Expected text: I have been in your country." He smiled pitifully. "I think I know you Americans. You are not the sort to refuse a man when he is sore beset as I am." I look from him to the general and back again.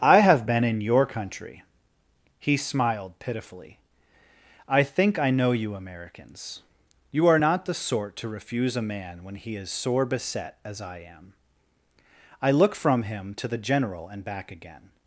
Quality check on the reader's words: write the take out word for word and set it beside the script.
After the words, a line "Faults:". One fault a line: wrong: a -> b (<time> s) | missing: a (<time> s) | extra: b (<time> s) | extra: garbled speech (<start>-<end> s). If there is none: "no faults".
I have been in your country." He smiled pitifully. "I think I know you Americans. You are not the sort to refuse a man when he is sore beset as I am." I look from him to the general and back again.
Faults:
no faults